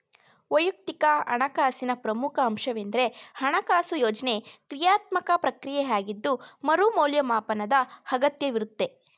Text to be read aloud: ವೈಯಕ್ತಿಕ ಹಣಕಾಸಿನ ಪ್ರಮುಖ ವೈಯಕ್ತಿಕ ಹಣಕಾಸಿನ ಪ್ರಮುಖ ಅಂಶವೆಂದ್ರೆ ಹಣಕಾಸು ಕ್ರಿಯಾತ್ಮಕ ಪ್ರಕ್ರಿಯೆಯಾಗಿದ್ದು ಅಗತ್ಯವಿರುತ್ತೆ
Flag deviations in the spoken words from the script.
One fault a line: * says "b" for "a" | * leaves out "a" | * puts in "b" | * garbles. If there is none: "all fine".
* leaves out "ವೈಯಕ್ತಿಕ ಹಣಕಾಸಿನ ಪ್ರಮುಖ"
* puts in "ಯೋಜ್ನೆ"
* puts in "ಮರು ಮೌಲ್ಯಮಾಪನದ"